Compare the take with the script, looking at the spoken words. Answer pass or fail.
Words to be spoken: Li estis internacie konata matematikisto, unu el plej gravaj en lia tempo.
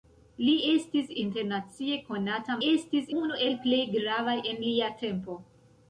fail